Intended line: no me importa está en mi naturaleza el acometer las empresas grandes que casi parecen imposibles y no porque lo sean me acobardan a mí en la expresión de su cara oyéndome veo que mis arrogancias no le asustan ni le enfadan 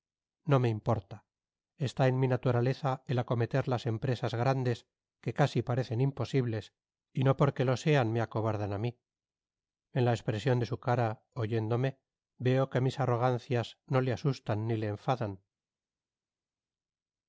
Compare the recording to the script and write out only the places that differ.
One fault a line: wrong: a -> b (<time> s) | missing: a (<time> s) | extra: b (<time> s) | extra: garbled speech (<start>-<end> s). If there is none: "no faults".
no faults